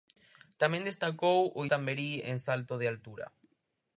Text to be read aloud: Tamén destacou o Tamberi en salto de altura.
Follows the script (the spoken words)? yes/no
yes